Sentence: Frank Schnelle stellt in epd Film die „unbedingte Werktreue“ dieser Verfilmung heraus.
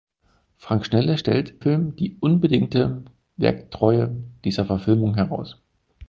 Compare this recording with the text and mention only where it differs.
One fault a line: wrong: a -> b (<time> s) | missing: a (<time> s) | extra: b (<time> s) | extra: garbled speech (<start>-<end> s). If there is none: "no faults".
missing: in epd (1.5 s)